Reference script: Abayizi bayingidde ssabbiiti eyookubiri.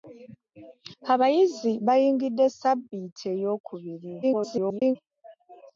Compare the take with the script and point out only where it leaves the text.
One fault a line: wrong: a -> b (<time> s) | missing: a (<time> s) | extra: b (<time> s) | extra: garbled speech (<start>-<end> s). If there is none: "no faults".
extra: garbled speech (4.2-5.0 s)